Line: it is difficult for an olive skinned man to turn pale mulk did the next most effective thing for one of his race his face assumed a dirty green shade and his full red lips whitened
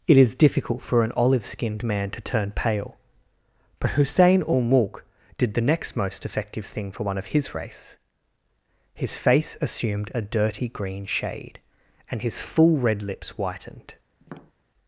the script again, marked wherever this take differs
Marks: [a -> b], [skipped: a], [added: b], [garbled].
it is difficult for an olive skinned man to turn pale [added: but hussein ul] mulk did the next most effective thing for one of his race his face assumed a dirty green shade and his full red lips whitened